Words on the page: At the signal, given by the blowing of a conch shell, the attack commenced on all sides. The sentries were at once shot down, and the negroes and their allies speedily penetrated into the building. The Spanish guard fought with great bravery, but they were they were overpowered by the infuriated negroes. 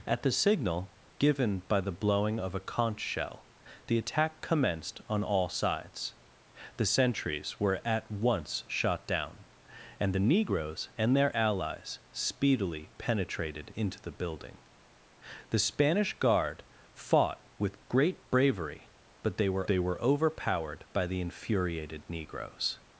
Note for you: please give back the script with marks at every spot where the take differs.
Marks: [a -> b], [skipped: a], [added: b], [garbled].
At the signal, given by the blowing of a conch shell, the attack commenced on all sides. The sentries were at once shot down, and the negroes and their allies speedily penetrated into the building. The Spanish guard fought with great bravery, but they were they were overpowered by the infuriated negroes.